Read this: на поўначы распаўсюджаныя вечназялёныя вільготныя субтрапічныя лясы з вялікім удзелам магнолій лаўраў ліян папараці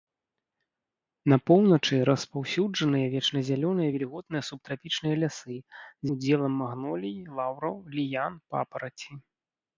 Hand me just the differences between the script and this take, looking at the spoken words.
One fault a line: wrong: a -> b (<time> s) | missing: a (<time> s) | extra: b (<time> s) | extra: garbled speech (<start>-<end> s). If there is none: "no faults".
missing: вялікім (6.1 s)